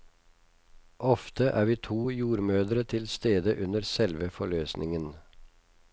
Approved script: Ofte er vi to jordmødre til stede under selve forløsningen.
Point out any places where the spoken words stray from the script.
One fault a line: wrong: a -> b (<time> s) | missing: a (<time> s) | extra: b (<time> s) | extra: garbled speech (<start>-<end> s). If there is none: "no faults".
no faults